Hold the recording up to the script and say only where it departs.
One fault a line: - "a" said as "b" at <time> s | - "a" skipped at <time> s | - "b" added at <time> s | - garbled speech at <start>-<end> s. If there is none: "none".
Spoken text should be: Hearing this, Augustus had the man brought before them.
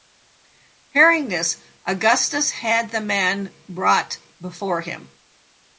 - "them" said as "him" at 4.8 s